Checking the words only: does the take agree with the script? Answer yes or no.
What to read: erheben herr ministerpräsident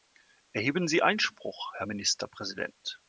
no